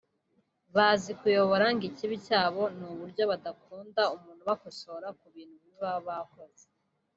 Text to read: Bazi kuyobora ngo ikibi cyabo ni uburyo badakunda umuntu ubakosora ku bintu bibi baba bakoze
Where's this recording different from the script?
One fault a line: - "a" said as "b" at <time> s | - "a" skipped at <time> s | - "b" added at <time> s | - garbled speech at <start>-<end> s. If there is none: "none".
none